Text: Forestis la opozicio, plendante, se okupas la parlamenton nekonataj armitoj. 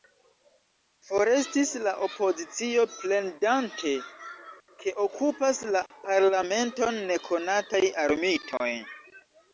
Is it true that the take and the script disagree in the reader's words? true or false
true